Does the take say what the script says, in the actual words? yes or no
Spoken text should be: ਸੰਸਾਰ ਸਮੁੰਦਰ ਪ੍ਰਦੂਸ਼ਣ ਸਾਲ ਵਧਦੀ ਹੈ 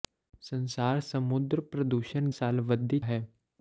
yes